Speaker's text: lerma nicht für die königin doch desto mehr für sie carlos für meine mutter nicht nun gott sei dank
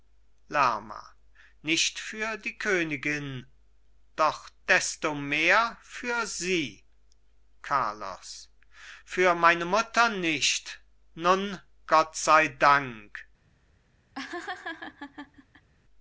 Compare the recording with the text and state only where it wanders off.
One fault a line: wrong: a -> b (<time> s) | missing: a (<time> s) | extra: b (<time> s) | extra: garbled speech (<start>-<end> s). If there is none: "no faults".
no faults